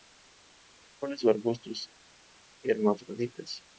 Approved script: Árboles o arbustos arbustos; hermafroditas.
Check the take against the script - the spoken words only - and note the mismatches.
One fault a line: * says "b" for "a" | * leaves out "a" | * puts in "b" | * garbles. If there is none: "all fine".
* leaves out "arbustos"